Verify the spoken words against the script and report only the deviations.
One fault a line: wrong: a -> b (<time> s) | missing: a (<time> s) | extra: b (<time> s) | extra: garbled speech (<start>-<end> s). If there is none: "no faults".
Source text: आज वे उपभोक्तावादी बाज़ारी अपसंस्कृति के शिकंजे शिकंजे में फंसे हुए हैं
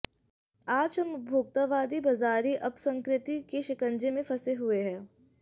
wrong: वे -> हम (1.0 s)
missing: शिकंजे (4.1 s)